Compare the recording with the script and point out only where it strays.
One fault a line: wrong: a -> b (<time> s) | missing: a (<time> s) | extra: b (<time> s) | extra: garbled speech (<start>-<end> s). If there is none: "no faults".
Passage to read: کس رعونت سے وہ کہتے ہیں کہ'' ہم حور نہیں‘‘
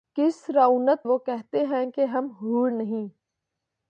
missing: سے (1.1 s)